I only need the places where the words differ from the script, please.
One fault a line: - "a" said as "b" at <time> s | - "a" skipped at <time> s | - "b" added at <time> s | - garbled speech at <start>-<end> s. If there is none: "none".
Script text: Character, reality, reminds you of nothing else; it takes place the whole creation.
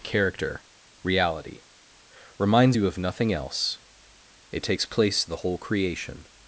none